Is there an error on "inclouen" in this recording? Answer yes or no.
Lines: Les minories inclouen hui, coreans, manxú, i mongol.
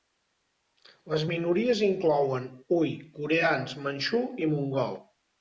no